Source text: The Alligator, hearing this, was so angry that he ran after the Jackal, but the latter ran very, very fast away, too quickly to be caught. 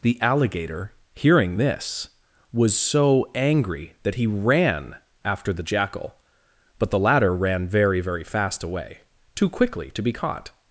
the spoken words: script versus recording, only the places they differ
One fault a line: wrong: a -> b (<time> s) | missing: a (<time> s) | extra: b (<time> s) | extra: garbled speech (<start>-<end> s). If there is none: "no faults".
no faults